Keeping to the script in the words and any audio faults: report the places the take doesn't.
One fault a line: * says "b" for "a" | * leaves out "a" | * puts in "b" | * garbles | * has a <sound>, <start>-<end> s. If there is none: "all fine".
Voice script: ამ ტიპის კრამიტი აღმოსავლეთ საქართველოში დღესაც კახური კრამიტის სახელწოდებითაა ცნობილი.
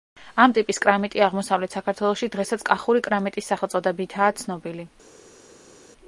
all fine